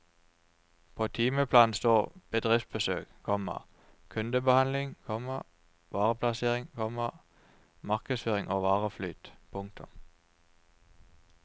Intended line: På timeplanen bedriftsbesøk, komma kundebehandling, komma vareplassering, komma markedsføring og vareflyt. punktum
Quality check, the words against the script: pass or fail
fail